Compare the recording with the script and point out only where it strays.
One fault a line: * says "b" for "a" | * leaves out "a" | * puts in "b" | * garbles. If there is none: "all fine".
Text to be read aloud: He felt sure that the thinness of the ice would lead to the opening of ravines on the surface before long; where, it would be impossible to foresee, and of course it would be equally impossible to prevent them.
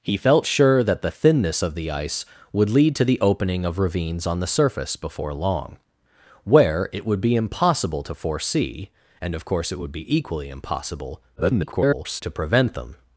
* garbles